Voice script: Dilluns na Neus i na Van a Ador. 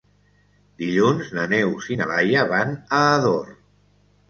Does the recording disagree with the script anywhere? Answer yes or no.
yes